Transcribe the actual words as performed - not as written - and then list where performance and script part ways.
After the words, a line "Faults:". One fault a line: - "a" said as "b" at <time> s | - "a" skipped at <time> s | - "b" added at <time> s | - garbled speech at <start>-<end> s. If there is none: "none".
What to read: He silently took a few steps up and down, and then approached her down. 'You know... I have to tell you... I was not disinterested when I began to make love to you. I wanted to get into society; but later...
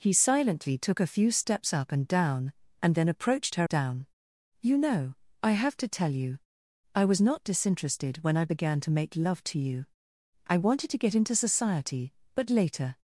He silently took a few steps up and down, and then approached her down. 'You know... I have to tell you... I was not disinterested when I began to make love to you. I wanted to get into society; but later...
Faults:
none